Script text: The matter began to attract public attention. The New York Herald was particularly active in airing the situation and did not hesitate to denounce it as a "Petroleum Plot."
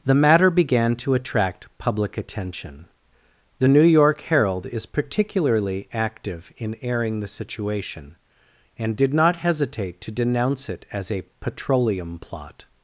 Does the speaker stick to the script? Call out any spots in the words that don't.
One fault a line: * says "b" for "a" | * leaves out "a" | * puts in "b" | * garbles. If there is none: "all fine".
* says "is" for "was"